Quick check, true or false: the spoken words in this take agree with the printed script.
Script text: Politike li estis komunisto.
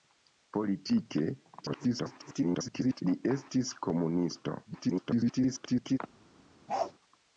false